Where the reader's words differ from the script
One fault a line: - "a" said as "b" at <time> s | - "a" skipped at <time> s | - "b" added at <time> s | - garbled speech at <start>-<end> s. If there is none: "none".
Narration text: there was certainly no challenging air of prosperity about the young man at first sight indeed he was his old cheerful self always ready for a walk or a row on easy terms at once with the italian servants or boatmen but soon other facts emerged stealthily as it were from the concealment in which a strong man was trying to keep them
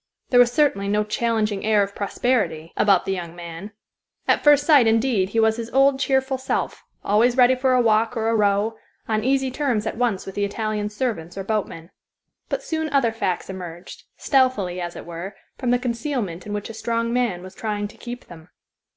none